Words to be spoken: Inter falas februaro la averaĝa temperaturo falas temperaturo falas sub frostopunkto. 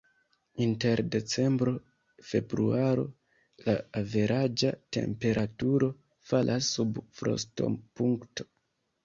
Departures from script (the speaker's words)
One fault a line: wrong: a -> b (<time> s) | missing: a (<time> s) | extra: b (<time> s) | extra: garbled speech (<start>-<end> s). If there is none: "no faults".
wrong: falas -> decembro (1.1 s)
missing: temperaturo falas (6.7 s)